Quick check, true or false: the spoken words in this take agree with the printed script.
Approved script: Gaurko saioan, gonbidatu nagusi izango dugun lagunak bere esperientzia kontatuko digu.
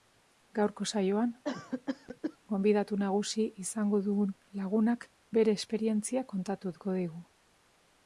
true